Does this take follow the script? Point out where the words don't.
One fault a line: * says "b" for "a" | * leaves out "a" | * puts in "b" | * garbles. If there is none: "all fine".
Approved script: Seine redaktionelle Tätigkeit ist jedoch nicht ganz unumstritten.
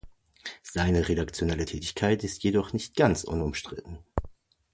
all fine